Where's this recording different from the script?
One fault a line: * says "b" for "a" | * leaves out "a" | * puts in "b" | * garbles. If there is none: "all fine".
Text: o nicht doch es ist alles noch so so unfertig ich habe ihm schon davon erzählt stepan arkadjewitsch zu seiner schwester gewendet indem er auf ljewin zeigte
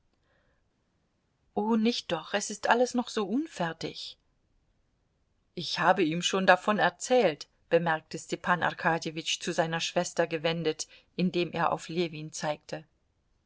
* leaves out "so"
* puts in "bemerkte"